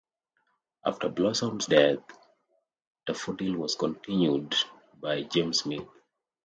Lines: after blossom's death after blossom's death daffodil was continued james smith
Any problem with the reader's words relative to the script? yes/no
yes